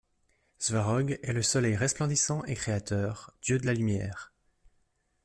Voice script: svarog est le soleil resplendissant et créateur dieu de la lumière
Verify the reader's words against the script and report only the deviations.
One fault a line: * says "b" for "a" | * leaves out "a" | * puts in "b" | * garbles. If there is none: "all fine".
all fine